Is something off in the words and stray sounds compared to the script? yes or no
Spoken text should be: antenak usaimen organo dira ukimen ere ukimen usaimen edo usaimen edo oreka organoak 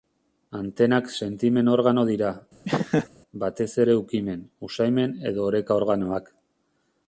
yes